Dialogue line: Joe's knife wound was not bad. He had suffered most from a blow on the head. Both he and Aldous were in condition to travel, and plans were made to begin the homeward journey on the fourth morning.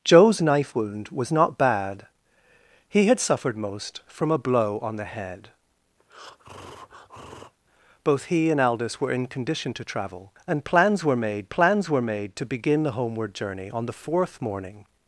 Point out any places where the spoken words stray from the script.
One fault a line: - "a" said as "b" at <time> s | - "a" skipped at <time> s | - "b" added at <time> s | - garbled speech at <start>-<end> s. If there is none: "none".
- "plans were made" added at 11.5 s